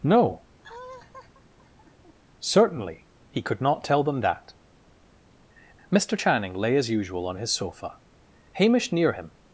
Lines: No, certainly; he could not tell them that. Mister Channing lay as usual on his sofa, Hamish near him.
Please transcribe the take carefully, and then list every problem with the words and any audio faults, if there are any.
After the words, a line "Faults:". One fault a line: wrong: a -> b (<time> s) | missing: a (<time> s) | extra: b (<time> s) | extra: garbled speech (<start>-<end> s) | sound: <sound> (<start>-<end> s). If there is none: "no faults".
No, certainly; he could not tell them that. Mister Channing lay as usual on his sofa, Hamish near him.
Faults:
sound: laugh (0.6-2.2 s)